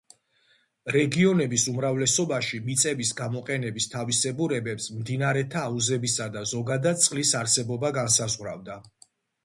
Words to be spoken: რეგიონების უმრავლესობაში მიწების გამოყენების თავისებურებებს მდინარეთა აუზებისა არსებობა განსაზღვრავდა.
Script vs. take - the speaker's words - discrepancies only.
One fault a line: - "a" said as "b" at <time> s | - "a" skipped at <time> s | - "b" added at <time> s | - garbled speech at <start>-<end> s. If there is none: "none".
- "და ზოგადად წყლის" added at 6.4 s